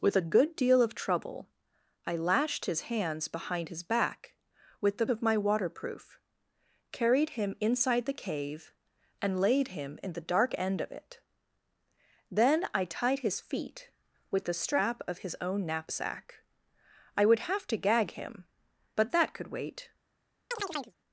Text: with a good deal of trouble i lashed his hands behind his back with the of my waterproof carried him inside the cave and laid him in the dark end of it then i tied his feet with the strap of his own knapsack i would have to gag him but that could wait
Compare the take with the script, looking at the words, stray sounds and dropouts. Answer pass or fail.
fail